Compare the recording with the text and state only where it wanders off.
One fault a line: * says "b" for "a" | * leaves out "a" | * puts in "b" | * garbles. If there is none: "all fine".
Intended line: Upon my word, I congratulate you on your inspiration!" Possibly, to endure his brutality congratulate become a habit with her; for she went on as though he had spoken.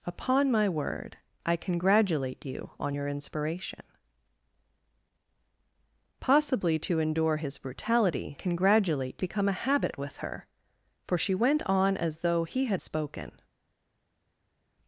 all fine